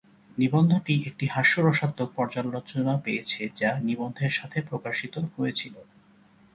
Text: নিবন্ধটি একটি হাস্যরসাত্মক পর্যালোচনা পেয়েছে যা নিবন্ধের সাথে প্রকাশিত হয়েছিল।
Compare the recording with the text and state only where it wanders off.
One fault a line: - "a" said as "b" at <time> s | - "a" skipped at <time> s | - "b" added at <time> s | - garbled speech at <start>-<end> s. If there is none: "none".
none